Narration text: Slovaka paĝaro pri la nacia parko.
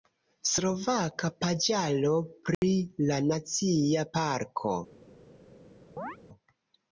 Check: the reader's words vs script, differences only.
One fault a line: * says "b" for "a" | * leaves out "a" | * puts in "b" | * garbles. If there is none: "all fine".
all fine